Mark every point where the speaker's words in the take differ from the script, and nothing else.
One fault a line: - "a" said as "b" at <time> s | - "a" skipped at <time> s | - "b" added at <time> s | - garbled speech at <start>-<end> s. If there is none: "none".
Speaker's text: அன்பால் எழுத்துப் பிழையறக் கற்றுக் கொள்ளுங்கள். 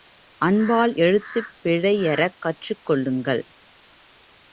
none